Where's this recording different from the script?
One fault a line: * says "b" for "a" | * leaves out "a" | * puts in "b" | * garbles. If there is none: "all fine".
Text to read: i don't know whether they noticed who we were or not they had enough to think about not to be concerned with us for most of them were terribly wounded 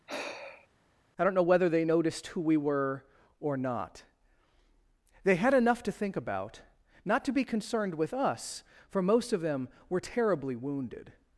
all fine